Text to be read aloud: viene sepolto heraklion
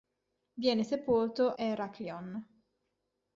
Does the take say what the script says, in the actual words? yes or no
yes